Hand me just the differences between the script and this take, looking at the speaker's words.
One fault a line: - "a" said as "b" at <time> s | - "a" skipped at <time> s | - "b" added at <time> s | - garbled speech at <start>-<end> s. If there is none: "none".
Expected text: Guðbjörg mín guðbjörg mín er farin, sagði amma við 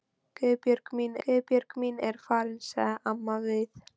none